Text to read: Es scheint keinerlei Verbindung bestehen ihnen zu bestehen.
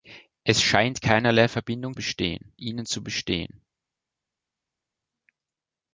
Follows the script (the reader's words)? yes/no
yes